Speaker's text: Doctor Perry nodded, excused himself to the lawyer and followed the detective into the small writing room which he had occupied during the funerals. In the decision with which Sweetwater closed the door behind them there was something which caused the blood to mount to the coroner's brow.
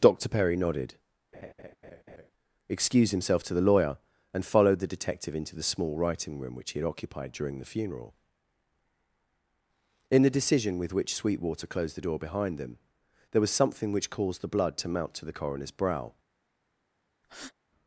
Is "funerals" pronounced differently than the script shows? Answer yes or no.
yes